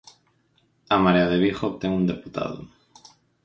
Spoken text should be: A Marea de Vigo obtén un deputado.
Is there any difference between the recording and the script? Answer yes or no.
no